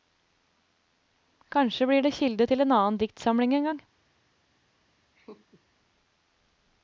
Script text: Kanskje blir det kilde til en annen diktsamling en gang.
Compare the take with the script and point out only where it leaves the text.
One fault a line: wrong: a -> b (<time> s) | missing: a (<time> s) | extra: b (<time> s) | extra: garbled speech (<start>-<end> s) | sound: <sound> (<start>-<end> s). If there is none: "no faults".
sound: laugh (5.2-5.6 s)